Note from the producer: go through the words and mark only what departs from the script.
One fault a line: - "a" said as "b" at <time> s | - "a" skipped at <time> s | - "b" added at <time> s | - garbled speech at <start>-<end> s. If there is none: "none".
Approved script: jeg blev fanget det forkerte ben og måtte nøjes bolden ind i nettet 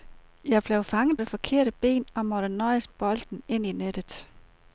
none